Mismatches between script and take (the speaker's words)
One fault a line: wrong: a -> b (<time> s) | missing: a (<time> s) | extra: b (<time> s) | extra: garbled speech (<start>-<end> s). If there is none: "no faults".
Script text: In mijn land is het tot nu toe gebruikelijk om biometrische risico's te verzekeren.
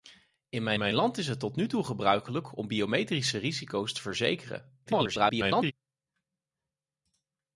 extra: mijn (0.8 s)
extra: garbled speech (4.9-5.7 s)